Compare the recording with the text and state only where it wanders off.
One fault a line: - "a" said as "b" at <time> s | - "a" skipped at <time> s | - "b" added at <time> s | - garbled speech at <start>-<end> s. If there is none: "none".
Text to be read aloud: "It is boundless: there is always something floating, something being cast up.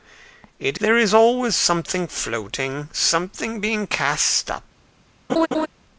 - "is boundless" skipped at 0.8 s